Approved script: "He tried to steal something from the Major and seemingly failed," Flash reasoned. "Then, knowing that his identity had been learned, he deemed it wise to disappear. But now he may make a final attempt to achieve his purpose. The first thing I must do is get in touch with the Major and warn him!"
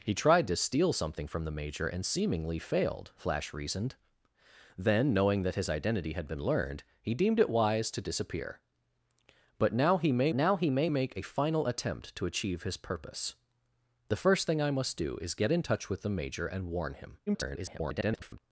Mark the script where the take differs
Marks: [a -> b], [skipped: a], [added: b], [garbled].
"He tried to steal something from the Major and seemingly failed," Flash reasoned. "Then, knowing that his identity had been learned, he deemed it wise to disappear. But now he may [added: now he may] make a final attempt to achieve his purpose. The first thing I must do is get in touch with the Major and warn him!" [garbled]